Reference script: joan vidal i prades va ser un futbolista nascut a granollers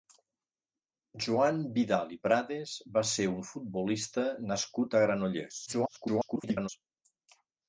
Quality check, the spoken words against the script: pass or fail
fail